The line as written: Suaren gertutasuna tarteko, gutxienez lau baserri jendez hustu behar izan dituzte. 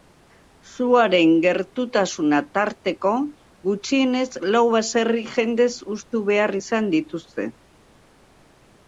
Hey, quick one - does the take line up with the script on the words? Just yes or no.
yes